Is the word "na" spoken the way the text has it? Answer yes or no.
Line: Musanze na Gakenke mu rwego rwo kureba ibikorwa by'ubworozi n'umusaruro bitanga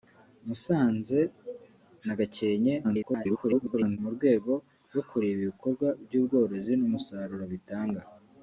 yes